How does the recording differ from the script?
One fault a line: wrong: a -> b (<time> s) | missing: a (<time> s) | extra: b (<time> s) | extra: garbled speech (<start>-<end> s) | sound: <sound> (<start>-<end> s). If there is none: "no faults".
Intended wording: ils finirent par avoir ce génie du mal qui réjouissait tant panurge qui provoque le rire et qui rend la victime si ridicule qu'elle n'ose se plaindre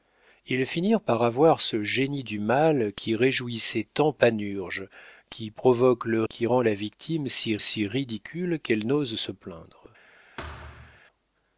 missing: rire et (6.2 s)
extra: si (7.6 s)
sound: thud (10.4-11.0 s)